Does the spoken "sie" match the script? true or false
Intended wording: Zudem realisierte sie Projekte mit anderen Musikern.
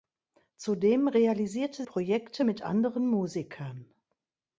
false